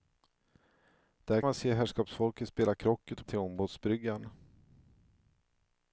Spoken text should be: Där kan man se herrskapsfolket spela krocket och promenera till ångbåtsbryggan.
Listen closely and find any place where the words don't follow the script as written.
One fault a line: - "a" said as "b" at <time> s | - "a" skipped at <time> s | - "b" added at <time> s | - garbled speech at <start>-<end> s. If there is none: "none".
- "kan" skipped at 1.4 s
- "promenera" skipped at 3.3 s